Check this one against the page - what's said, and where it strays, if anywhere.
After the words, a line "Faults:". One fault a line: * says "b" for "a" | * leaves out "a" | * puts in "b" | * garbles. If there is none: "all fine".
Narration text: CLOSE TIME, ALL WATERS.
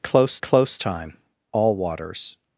CLOSE close TIME, ALL WATERS.
Faults:
* puts in "close"